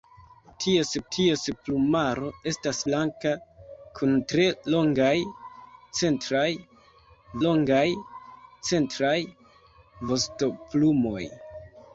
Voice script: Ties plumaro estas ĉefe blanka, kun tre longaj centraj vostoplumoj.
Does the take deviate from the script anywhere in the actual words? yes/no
yes